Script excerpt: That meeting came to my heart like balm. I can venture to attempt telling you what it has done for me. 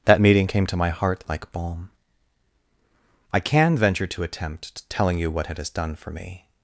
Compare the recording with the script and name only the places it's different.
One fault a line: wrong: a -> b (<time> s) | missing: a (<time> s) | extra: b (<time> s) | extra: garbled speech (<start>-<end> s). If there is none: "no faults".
no faults